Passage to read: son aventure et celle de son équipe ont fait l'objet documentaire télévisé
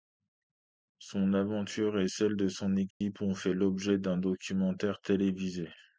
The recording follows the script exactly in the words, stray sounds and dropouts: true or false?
false